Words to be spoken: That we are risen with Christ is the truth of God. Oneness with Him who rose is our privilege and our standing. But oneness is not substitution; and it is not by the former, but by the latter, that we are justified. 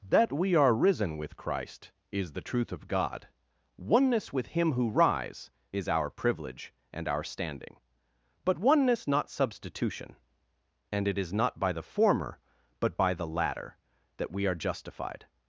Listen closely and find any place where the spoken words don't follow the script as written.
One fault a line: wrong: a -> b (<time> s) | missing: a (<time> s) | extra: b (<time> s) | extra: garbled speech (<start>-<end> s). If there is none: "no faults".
wrong: rose -> rise (4.9 s)
missing: is (9.1 s)